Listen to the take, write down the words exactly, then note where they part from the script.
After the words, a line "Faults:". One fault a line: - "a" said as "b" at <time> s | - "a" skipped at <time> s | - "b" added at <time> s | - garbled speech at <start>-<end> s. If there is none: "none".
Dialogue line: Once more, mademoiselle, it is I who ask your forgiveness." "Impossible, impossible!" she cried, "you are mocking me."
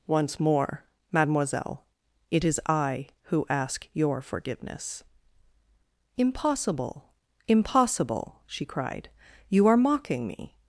Once more, mademoiselle, it is I who ask your forgiveness." "Impossible, impossible!" she cried, "you are mocking me."
Faults:
none